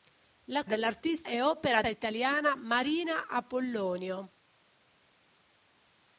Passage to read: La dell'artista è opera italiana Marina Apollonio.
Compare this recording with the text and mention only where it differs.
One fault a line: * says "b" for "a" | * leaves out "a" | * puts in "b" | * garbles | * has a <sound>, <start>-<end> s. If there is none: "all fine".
all fine